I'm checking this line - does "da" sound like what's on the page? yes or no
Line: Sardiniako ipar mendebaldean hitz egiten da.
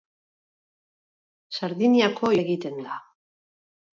yes